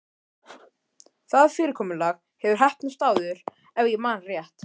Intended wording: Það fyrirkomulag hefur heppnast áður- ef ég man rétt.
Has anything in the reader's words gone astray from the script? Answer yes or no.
no